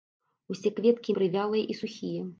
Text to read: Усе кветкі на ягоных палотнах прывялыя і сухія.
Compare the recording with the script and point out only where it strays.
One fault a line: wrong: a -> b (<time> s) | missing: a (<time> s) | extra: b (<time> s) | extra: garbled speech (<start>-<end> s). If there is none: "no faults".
missing: на ягоных палотнах (1.1 s)